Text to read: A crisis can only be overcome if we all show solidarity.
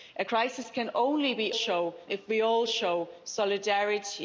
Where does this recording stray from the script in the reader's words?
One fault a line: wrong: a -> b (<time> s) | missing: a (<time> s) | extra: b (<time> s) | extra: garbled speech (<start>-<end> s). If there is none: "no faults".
wrong: overcome -> show (1.5 s)